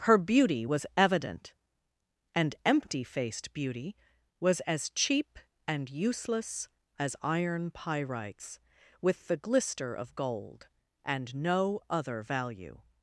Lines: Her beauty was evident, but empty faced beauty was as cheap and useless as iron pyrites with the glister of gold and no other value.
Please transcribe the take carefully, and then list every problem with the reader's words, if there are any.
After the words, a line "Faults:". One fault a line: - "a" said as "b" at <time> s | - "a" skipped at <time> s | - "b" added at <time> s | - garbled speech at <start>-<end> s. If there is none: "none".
Her beauty was evident, and empty faced beauty was as cheap and useless as iron pyrites with the glister of gold and no other value.
Faults:
- "but" said as "and" at 2.3 s